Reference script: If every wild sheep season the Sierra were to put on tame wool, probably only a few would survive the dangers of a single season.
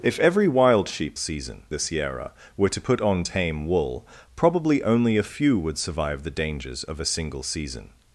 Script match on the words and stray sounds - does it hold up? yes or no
yes